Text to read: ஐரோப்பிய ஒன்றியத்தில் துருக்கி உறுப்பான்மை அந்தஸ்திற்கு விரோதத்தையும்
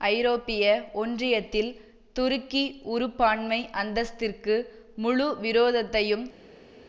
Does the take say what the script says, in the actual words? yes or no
no